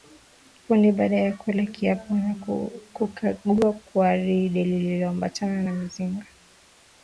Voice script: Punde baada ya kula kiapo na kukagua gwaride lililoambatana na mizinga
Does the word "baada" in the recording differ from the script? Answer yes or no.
no